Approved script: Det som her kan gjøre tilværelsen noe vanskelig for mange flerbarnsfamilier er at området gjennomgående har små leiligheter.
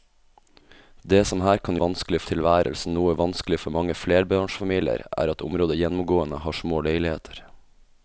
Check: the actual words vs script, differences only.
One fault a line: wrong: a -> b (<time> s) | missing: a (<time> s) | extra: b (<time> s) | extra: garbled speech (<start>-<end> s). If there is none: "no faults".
wrong: gjøre -> vanskelig (1.8 s)